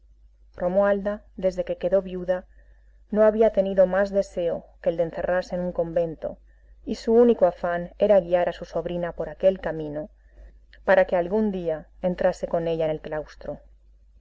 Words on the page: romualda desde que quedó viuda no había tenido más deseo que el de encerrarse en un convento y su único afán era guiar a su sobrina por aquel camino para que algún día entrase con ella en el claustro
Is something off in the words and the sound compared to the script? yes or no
no